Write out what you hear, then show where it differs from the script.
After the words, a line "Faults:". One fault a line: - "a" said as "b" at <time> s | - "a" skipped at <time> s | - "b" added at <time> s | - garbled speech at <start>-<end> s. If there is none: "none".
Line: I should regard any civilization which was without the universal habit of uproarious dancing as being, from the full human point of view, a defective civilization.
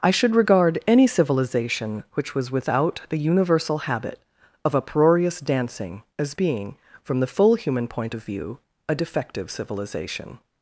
I should regard any civilization which was without the universal habit of uproarious dancing as being, from the full human point of view, a defective civilization.
Faults:
none